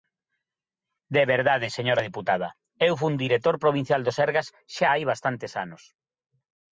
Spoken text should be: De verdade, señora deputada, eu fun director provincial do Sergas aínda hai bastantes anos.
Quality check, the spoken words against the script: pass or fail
fail